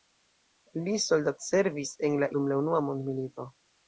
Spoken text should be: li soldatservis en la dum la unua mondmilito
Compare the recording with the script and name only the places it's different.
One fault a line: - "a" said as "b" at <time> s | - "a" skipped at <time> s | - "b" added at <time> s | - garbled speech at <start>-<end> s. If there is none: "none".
none